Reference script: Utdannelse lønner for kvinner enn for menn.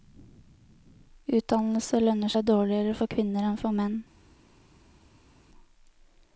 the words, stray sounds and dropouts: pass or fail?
fail